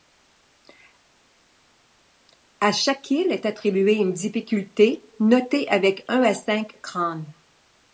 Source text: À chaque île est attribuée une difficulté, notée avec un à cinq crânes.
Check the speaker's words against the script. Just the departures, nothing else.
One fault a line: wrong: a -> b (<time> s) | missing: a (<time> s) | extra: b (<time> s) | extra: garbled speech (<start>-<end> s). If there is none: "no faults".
no faults